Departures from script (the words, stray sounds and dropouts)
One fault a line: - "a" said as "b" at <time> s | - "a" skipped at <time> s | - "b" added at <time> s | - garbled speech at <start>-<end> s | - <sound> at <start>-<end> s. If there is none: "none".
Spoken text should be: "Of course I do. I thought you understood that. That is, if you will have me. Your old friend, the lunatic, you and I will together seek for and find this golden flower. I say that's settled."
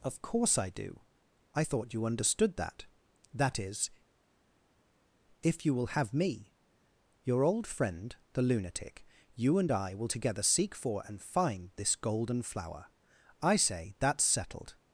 none